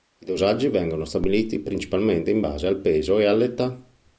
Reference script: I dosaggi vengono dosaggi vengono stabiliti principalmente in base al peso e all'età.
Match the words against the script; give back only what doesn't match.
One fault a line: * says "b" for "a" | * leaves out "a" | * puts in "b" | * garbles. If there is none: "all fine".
* leaves out "dosaggi vengono"